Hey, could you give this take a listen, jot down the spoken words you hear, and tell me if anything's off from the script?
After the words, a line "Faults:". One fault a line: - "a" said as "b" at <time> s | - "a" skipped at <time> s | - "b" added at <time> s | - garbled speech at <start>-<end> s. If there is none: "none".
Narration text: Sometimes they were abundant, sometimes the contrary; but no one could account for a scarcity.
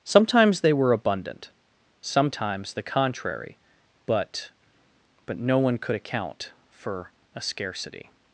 Sometimes they were abundant, sometimes the contrary; but but no one could account for a scarcity.
Faults:
- "but" added at 5.2 s